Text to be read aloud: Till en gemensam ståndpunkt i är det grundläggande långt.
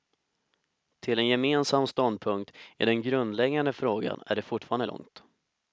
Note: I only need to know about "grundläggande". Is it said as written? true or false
false